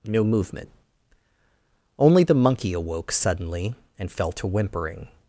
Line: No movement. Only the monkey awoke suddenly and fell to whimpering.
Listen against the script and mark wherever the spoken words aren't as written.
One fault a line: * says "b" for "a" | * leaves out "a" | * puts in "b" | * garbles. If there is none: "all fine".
all fine